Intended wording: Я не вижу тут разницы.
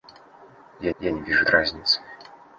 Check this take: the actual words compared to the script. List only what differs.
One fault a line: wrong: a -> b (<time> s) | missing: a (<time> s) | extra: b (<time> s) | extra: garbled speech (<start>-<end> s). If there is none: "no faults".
extra: я (1.0 s)
missing: тут (1.5 s)